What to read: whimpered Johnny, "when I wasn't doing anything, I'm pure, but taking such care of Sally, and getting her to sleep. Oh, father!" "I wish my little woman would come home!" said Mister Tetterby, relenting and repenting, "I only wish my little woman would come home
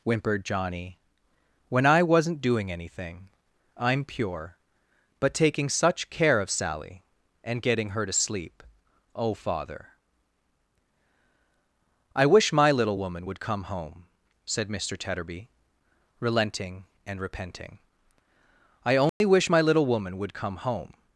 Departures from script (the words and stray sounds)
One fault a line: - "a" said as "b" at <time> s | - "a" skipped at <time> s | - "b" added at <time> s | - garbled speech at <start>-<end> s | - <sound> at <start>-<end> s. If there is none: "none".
- dropout at 19.1-19.2 s